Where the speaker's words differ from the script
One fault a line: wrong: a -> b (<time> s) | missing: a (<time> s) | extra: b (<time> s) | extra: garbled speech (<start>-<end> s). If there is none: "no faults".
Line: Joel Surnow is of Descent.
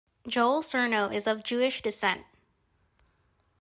extra: Jewish (1.4 s)